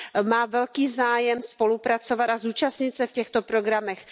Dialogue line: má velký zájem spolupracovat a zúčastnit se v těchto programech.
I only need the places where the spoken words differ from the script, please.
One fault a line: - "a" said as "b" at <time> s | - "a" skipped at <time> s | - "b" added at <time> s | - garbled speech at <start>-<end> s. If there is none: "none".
none